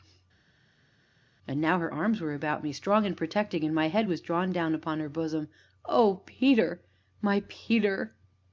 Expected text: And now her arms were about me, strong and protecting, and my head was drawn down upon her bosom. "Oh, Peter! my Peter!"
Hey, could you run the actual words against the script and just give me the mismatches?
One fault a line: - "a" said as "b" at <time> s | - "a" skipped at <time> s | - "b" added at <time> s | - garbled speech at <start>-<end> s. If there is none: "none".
none